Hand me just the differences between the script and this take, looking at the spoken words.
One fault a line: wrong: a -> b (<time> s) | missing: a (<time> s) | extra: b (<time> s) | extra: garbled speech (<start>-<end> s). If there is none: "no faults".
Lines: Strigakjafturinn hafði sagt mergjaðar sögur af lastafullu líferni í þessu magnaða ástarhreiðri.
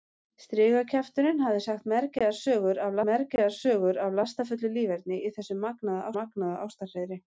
extra: mergjaðar sögur af (3.1 s)
extra: magnaða (6.2 s)